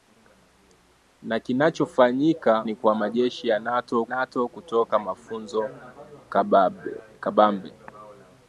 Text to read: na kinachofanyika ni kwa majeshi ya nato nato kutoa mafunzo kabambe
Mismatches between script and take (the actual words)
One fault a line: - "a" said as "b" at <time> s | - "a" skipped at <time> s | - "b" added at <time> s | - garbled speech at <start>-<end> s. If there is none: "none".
none